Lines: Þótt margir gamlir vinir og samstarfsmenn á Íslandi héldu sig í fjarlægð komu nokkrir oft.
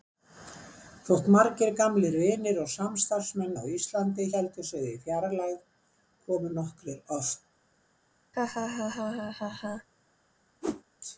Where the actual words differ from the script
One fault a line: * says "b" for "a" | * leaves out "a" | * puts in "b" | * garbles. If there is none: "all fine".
all fine